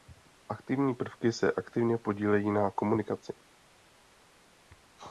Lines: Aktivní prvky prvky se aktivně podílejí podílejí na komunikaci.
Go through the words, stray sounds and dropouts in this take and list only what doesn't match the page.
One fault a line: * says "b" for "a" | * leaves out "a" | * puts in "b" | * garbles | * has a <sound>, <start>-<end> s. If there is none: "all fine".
* leaves out "prvky"
* leaves out "podílejí"